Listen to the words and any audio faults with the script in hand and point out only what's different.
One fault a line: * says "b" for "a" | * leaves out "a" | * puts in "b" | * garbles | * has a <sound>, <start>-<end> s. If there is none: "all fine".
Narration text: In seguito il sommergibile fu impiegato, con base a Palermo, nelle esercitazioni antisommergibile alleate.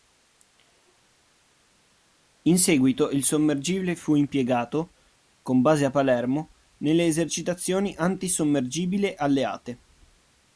all fine